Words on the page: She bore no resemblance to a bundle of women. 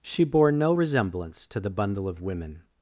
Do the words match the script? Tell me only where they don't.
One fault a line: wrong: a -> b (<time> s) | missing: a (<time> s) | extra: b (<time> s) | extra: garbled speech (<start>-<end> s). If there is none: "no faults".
wrong: a -> the (1.6 s)